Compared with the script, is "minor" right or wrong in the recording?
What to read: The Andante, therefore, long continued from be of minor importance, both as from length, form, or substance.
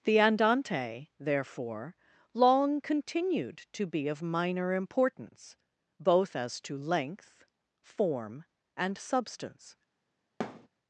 right